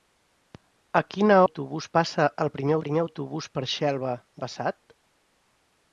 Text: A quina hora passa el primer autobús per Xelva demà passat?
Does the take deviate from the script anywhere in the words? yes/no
yes